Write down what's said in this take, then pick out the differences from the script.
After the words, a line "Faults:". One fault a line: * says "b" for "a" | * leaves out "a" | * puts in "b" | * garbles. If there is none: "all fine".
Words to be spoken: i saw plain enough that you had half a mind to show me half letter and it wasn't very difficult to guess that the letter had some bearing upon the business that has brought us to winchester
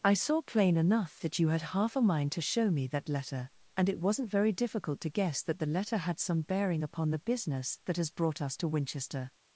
i saw plain enough that you had half a mind to show me that letter and it wasn't very difficult to guess that the letter had some bearing upon the business that has brought us to winchester
Faults:
* says "that" for "half"